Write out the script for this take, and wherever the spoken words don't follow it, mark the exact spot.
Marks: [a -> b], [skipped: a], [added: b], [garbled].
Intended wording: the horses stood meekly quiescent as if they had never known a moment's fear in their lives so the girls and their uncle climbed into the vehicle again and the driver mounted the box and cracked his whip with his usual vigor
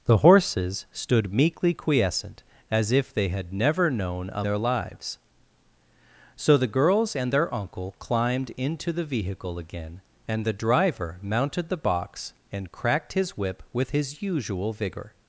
the horses stood meekly quiescent as if they had never known a [skipped: moment's fear in] their lives so the girls and their uncle climbed into the vehicle again and the driver mounted the box and cracked his whip with his usual vigor